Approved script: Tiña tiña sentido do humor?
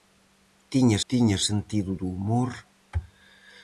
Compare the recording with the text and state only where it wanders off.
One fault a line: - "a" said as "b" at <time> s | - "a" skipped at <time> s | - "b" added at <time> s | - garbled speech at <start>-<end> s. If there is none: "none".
none